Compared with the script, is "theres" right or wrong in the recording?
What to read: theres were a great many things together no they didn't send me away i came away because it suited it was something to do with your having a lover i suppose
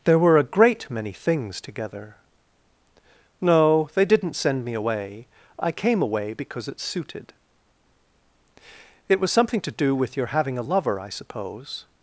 wrong